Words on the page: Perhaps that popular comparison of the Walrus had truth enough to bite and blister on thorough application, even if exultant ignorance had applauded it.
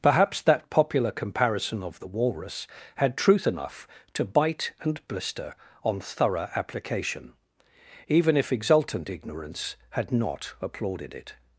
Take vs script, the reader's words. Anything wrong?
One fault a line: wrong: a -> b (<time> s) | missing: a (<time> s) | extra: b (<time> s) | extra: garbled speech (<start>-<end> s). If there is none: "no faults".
extra: not (10.1 s)